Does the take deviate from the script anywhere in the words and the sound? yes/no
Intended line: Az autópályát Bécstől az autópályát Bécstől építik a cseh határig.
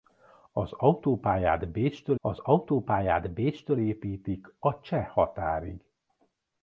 no